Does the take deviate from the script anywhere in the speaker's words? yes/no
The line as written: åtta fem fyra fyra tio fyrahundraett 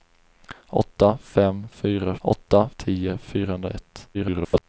yes